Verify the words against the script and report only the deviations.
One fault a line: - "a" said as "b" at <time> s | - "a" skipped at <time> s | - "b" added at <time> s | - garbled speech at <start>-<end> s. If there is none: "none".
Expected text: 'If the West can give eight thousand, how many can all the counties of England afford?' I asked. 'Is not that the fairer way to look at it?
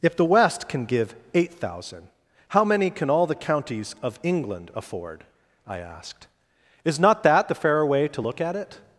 none